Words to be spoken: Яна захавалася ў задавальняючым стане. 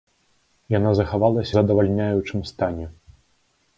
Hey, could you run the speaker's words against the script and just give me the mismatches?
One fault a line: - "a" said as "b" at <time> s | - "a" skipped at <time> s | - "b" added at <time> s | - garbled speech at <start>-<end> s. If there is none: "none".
- "ў" skipped at 1.5 s